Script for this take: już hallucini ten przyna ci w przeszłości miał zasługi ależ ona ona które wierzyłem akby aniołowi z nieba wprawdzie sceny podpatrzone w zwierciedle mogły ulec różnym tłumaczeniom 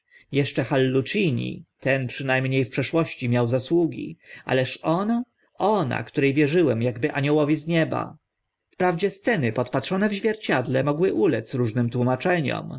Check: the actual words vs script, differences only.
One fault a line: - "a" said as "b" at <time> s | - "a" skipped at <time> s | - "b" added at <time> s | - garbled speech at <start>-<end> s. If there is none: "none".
- "już" said as "jeszcze" at 0.3 s
- "ci" said as "mnie" at 2.4 s